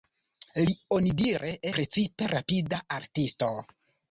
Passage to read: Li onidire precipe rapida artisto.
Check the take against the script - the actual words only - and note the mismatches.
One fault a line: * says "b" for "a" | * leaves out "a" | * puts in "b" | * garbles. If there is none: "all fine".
all fine